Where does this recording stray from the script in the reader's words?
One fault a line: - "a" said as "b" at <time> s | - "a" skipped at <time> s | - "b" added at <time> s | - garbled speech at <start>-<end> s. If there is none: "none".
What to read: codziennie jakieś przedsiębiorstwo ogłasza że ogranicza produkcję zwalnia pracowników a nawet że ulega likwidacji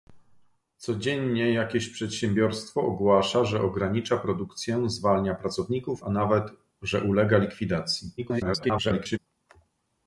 - garbled speech at 8.2-9.2 s